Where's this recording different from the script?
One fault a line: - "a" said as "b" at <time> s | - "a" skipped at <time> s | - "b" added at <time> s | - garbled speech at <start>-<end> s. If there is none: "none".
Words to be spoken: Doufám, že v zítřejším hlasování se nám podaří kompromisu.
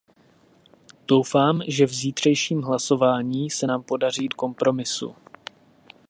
none